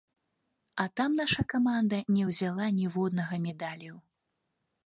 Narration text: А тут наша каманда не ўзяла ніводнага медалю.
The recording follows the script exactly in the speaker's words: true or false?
false